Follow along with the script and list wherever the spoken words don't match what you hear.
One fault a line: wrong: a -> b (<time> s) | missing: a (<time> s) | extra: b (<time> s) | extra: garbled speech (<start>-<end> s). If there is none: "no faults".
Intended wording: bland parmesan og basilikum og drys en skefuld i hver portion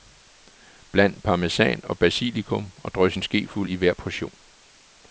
no faults